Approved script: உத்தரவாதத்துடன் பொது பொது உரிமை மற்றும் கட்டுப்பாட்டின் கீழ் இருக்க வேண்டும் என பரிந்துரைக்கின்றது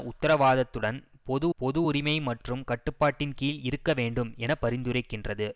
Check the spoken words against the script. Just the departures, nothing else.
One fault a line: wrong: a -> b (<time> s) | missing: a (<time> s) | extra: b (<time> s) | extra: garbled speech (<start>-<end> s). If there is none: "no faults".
no faults